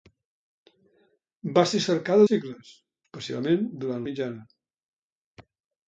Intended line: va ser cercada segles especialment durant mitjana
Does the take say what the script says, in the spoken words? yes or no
yes